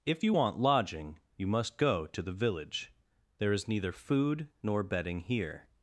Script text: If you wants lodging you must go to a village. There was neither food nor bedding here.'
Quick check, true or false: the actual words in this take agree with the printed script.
false